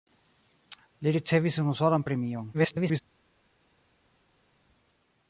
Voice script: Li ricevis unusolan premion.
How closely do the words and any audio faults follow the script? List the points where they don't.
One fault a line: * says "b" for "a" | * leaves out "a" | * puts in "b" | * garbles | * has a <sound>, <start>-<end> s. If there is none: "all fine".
* garbles